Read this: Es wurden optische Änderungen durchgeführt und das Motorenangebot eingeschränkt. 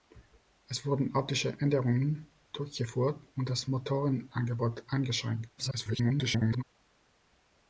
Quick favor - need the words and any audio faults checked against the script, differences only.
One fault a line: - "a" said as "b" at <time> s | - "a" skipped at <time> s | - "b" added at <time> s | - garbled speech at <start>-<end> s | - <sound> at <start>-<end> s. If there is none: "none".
- garbled speech at 5.6-6.6 s